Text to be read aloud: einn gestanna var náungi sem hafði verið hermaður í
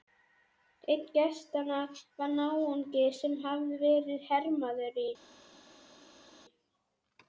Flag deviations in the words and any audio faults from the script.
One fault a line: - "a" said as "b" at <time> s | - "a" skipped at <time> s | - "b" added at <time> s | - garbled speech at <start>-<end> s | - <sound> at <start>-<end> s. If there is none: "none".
none